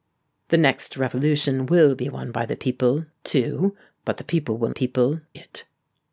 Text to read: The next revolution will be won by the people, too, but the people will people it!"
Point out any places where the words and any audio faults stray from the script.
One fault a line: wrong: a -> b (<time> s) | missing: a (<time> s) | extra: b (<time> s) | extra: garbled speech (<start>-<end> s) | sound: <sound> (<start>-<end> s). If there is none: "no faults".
no faults